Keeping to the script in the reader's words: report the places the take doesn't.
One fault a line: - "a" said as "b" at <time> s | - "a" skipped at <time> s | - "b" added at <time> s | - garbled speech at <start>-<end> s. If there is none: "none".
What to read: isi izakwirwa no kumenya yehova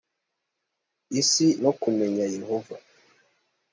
- "izakwirwa" skipped at 1.5 s